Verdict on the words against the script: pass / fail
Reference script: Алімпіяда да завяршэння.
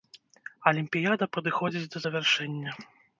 fail